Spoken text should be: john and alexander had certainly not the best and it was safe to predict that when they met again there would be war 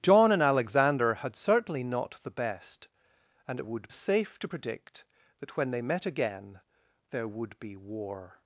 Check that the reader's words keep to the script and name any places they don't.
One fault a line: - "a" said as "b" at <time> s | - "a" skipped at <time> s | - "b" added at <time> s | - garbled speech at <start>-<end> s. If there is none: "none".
- "was" said as "would" at 3.6 s